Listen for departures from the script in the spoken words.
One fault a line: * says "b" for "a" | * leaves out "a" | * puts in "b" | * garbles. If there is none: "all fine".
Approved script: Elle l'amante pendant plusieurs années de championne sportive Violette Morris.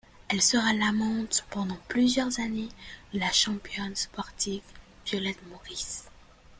* puts in "sera"
* puts in "la"